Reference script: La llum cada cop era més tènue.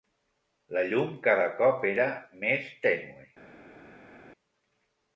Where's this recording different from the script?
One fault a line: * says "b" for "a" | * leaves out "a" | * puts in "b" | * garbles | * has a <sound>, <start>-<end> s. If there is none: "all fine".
all fine